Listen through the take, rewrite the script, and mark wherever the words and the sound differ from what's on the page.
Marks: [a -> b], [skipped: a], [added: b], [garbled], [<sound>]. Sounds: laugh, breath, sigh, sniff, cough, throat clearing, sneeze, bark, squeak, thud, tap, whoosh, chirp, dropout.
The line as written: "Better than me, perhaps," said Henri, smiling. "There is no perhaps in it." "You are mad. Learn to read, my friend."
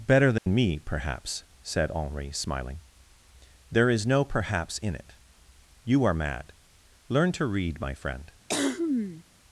"Better than [dropout] me, perhaps," said Henri, smiling. "There is no perhaps in it." "You are mad. Learn to read, my friend." [cough]